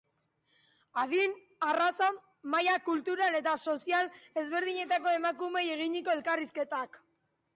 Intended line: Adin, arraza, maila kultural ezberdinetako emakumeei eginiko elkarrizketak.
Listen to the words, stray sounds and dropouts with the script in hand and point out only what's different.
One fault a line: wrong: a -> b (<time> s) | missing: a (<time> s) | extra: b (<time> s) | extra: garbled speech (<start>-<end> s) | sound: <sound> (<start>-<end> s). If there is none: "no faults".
extra: eta sozial (3.4 s)